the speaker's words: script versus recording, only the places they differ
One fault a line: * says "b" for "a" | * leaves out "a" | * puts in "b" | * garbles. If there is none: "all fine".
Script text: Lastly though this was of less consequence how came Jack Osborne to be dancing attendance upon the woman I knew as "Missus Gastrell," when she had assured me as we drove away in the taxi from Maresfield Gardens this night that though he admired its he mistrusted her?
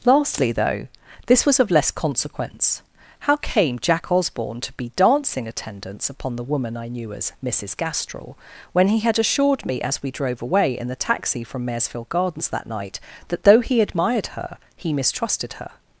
* says "he" for "she"
* says "that" for "this"
* says "her" for "its"